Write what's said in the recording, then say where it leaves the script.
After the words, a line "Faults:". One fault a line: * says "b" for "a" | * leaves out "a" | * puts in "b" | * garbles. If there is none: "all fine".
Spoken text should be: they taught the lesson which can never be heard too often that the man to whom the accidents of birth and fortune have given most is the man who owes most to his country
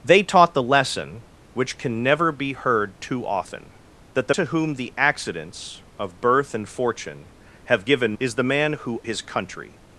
they taught the lesson which can never be heard too often that the to whom the accidents of birth and fortune have given is the man who his country
Faults:
* leaves out "man"
* leaves out "most"
* leaves out "owes most to"